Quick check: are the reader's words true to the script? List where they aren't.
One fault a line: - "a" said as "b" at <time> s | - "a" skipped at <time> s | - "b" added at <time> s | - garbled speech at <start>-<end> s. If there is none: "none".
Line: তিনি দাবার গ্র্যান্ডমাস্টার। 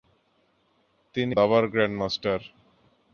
none